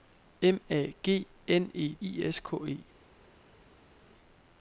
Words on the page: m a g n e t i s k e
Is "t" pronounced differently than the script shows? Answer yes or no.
yes